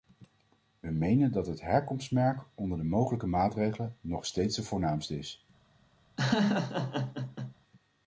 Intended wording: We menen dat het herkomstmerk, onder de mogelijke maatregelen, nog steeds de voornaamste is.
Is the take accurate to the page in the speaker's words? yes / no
yes